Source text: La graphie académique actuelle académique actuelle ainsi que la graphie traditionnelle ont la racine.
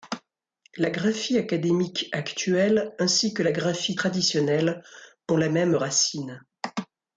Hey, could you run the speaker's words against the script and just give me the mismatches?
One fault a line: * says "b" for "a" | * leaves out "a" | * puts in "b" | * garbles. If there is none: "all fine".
* leaves out "académique actuelle"
* puts in "même"